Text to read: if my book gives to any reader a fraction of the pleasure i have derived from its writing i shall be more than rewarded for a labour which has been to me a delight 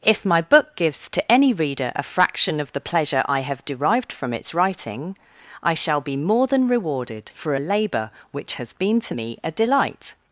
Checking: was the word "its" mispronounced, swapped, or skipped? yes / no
no